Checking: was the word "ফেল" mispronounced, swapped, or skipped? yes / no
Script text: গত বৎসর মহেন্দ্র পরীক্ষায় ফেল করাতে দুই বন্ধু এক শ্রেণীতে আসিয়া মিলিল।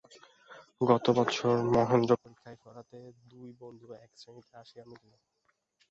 yes